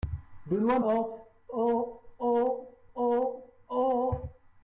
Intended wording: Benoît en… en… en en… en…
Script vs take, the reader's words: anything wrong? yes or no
no